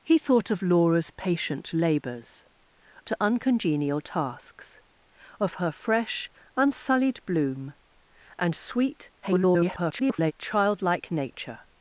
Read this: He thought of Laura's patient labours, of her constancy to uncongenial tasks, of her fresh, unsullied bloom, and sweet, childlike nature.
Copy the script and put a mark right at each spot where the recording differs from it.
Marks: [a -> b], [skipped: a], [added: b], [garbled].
He thought of Laura's patient labours, [skipped: of her constancy] to uncongenial tasks, of her fresh, unsullied bloom, and sweet, [garbled] childlike nature.